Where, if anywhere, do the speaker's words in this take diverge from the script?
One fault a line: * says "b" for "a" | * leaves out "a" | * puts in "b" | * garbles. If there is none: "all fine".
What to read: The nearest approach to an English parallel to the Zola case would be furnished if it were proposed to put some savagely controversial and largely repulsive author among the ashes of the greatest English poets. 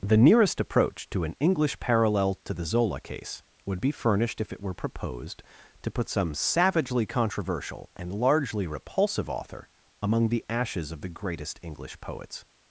all fine